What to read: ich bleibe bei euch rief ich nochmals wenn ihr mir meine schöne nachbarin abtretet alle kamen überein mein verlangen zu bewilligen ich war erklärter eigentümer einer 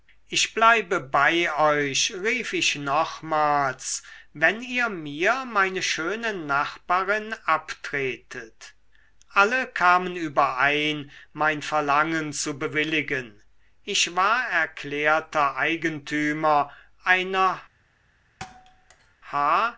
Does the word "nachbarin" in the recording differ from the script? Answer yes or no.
no